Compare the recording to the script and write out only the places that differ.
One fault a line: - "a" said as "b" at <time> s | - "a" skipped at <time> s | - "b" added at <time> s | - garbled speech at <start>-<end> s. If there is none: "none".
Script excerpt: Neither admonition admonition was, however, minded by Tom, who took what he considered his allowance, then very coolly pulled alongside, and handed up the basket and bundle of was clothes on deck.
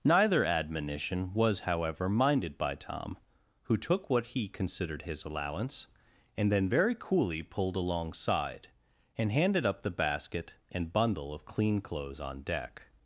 - "admonition" skipped at 1.3 s
- "and" added at 6.3 s
- "was" said as "clean" at 11.4 s